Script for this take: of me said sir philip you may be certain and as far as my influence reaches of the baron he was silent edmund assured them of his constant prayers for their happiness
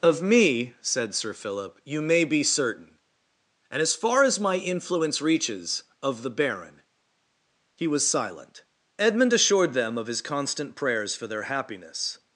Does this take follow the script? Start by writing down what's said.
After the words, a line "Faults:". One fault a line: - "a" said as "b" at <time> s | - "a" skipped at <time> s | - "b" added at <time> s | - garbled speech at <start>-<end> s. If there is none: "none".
of me said sir philip you may be certain and as far as my influence reaches of the baron he was silent edmund assured them of his constant prayers for their happiness
Faults:
none